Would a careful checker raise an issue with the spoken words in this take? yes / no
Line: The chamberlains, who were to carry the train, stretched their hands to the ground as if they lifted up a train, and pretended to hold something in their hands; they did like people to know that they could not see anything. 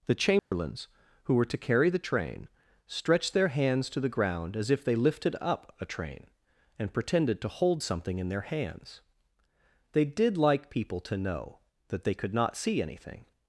no